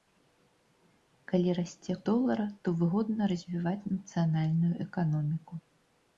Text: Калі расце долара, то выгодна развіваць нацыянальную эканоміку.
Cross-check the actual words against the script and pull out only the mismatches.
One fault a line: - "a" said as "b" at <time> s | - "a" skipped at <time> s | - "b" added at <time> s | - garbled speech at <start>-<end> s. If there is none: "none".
none